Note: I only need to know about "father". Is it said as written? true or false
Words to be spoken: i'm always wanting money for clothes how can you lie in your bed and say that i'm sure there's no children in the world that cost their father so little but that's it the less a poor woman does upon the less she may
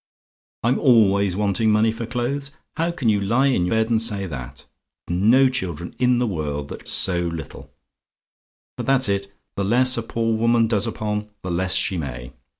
false